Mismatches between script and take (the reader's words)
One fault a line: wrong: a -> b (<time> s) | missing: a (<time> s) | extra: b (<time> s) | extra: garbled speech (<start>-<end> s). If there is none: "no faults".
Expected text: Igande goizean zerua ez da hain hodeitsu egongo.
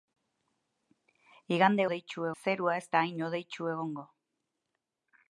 wrong: goizean -> hodeitsu (1.9 s)